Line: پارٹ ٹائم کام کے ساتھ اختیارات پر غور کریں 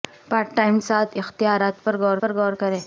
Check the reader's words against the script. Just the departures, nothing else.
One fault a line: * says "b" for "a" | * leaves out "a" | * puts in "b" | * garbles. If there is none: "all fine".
* says "ساتھ اختیارات پر غور" for "کام کے ساتھ اختیارات"